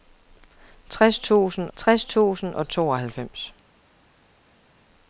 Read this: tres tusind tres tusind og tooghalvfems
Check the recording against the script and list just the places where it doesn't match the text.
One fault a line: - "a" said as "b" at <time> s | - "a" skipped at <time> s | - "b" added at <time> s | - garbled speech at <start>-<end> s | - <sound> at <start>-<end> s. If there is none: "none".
none